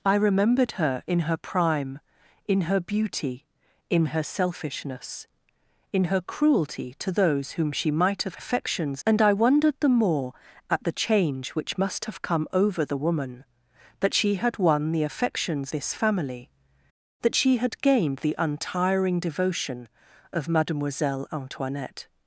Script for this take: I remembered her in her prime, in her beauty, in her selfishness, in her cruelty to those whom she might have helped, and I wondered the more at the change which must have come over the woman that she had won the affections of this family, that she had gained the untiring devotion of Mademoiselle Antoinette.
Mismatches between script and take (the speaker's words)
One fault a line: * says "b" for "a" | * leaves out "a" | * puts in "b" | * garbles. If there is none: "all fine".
* says "affections" for "helped"
* leaves out "of"